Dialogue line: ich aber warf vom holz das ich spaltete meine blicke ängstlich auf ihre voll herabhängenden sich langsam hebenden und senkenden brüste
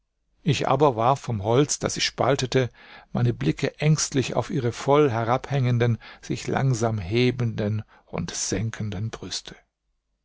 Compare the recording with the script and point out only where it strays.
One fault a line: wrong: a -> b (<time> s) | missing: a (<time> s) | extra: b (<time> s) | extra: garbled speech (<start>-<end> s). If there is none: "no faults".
no faults